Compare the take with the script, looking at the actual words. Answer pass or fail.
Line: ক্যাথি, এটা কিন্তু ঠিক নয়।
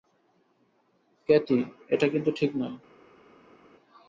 pass